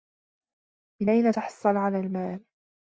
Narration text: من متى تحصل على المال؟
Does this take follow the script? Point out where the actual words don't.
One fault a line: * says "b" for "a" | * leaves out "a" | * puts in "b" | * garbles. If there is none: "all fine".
* says "أين" for "متى"